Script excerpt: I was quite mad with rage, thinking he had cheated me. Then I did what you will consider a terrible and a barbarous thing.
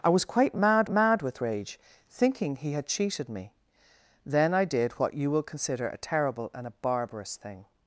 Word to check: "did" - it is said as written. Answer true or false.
true